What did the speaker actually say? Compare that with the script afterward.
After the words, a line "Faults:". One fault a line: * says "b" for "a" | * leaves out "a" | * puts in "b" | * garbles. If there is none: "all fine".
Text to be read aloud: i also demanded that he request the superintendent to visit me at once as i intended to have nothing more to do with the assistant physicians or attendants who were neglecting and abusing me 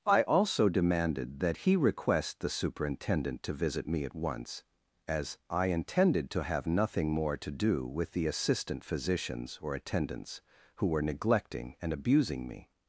i also demanded that he request the superintendent to visit me at once as i intended to have nothing more to do with the assistant physicians or attendants who were neglecting and abusing me
Faults:
all fine